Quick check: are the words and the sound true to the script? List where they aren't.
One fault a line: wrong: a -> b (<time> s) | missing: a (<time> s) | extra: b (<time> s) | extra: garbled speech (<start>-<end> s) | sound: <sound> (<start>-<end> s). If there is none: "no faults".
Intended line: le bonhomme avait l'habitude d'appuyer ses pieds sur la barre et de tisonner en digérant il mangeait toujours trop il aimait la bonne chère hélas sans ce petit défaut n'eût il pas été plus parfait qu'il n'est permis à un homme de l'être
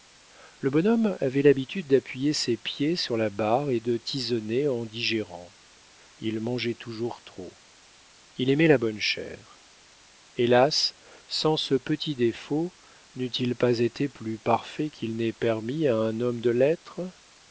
no faults